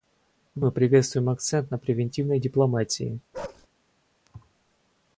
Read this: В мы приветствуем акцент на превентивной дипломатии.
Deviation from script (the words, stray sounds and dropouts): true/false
true